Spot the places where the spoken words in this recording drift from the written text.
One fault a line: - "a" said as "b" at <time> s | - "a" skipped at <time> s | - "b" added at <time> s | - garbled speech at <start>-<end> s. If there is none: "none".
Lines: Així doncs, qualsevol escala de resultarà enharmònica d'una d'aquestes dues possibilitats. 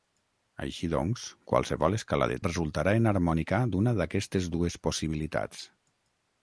none